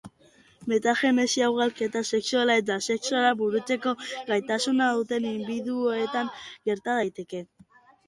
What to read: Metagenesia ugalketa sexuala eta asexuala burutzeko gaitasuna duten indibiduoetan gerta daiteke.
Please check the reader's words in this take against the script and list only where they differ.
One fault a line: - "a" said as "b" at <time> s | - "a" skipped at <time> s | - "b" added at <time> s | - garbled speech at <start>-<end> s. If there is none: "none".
none